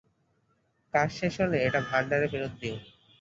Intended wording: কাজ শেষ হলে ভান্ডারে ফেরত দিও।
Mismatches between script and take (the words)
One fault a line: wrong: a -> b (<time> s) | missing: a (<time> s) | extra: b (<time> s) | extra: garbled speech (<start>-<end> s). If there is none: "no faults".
extra: এটা (1.7 s)